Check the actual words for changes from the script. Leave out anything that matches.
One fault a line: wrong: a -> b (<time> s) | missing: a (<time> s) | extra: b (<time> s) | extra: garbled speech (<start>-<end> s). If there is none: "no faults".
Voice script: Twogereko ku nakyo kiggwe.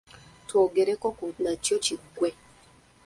no faults